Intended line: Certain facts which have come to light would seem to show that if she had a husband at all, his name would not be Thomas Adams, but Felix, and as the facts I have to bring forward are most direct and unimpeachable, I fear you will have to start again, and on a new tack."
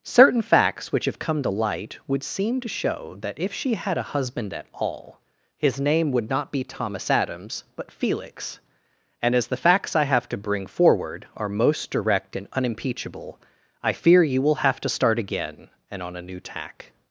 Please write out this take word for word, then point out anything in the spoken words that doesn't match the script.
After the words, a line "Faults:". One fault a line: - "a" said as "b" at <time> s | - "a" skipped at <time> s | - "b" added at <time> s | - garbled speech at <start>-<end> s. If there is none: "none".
Certain facts which have come to light would seem to show that if she had a husband at all, his name would not be Thomas Adams, but Felix, and as the facts I have to bring forward are most direct and unimpeachable, I fear you will have to start again, and on a new tack."
Faults:
none